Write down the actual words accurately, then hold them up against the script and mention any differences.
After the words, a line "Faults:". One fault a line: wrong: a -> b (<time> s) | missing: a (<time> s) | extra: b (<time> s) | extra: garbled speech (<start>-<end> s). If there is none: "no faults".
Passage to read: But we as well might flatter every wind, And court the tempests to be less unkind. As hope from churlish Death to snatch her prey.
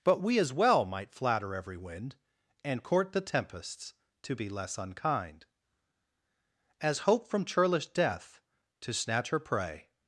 But we as well might flatter every wind, And court the tempests to be less unkind. As hope from churlish Death to snatch her prey.
Faults:
no faults